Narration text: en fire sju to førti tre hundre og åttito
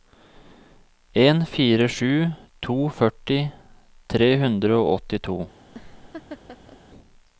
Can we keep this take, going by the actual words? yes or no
yes